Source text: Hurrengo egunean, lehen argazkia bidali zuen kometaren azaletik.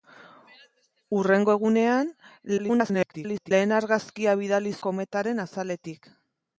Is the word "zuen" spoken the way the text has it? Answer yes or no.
no